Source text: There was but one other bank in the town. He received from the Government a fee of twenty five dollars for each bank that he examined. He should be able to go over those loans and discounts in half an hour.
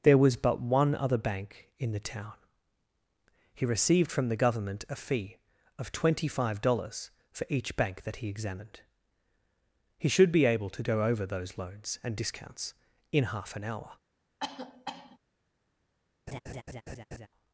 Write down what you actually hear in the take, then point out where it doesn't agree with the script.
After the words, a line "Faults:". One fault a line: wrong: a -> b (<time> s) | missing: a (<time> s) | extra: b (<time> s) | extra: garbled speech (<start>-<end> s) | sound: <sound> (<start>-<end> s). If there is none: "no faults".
There was but one other bank in the town. He received from the Government a fee of twenty five dollars for each bank that he examined. He should be able to go over those loans and discounts in half an hour.
Faults:
sound: cough (14.4-15.2 s)
sound: laugh (16.3-17.3 s)